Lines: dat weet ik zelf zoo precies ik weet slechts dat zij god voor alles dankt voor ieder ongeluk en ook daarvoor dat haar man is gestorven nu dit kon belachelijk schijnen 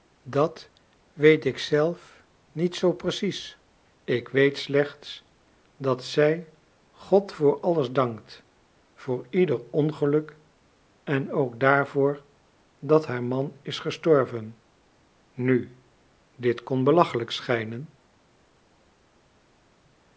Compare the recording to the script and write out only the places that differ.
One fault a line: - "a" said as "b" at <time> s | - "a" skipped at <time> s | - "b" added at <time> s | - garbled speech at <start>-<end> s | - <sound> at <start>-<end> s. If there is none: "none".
- "niet" added at 2.5 s